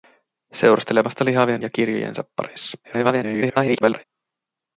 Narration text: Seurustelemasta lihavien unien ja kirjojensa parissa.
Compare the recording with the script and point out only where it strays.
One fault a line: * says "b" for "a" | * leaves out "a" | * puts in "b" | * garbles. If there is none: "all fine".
* leaves out "unien"
* garbles